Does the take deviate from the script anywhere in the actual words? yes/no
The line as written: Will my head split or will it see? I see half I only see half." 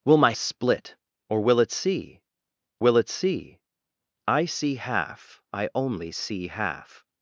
yes